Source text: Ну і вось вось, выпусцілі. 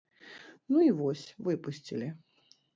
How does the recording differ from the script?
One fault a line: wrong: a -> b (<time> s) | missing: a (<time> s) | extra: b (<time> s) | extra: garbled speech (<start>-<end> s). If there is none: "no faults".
missing: вось (1.3 s)